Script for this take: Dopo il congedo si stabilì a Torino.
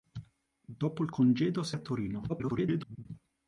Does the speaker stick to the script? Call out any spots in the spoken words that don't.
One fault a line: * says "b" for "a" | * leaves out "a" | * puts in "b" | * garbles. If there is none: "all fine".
* leaves out "stabilì"
* garbles